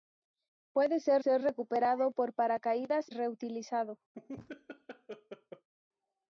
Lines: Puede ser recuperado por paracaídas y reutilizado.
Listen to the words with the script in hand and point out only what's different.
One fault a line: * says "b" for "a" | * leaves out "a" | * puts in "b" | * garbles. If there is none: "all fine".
* puts in "ser"
* leaves out "y"